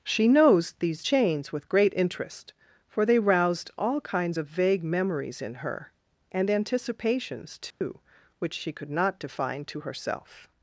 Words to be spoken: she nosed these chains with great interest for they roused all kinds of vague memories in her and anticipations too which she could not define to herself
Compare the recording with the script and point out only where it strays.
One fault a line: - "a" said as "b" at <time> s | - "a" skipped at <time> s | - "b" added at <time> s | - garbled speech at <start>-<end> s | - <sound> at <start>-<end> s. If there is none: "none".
- "nosed" said as "knows" at 0.3 s
- dropout at 7.7-7.8 s